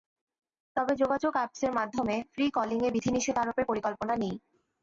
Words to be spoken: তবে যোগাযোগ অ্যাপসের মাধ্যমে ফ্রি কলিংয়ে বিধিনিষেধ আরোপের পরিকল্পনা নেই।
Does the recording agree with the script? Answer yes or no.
yes